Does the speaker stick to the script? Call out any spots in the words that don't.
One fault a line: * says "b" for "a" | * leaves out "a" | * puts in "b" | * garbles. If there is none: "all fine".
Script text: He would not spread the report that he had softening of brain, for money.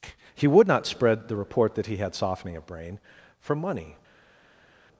all fine